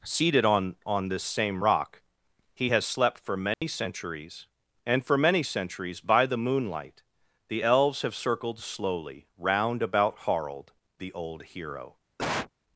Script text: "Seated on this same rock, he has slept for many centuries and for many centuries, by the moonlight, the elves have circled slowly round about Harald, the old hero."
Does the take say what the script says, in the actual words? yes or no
no